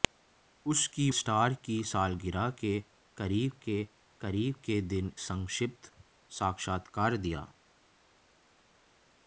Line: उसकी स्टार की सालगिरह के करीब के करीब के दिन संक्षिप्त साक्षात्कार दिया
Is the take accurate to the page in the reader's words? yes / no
yes